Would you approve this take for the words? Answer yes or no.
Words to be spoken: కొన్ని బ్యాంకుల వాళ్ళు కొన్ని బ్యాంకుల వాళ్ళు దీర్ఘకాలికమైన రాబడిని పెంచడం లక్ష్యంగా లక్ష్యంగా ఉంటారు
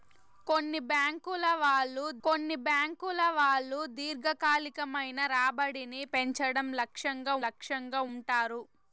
yes